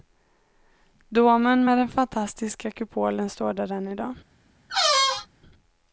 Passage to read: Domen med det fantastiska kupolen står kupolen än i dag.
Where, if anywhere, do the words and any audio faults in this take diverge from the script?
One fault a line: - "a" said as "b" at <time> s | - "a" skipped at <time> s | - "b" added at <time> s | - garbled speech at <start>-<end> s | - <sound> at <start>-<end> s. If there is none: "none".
- "det" said as "den" at 1.8 s
- "kupolen" said as "där" at 3.5 s
- squeak at 4.7-5.3 s